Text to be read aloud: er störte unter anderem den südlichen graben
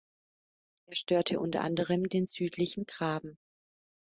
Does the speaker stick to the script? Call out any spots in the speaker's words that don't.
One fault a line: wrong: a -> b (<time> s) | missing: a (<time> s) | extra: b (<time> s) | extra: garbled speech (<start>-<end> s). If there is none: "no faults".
no faults